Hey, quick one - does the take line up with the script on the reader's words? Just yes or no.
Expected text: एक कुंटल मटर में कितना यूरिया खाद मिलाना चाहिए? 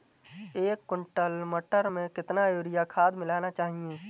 yes